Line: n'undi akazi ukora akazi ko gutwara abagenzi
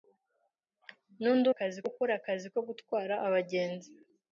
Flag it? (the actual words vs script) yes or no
no